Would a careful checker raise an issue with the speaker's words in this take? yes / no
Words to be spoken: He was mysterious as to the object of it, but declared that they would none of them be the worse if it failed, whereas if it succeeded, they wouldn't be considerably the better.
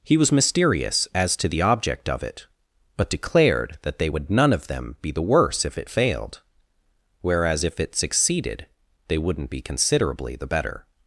no